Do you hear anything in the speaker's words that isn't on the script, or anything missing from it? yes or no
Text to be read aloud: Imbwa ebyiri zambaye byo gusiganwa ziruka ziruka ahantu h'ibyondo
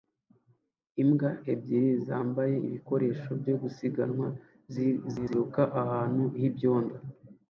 yes